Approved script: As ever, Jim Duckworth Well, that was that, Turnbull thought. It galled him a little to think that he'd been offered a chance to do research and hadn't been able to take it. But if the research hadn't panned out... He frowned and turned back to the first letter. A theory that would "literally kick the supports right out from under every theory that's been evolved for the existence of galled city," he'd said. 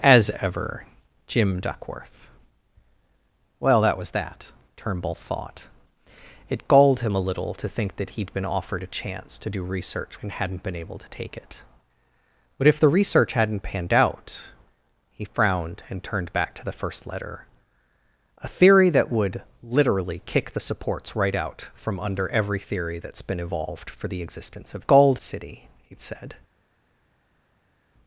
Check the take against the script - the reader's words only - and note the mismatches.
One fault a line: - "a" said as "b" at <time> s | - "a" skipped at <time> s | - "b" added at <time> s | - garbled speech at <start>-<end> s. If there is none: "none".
none